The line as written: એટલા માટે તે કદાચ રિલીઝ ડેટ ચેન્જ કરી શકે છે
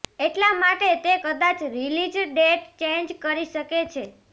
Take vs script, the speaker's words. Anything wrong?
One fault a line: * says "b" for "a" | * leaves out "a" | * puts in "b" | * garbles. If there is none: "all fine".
all fine